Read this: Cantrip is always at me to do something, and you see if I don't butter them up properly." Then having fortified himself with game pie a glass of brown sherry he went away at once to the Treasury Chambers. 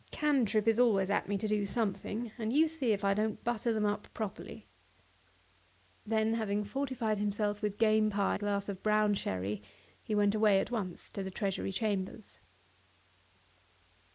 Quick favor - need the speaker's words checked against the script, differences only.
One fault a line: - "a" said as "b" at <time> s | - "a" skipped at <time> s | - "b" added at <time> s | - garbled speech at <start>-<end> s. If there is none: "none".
none